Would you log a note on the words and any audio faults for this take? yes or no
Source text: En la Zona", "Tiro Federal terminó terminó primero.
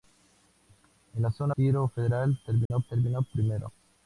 yes